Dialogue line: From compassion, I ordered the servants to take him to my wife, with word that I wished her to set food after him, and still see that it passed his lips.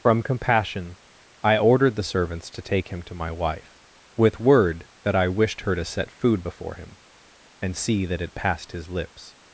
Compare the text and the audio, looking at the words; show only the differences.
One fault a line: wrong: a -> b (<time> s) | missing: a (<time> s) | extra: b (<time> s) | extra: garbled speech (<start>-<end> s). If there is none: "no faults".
wrong: after -> before (6.4 s)
missing: still (7.8 s)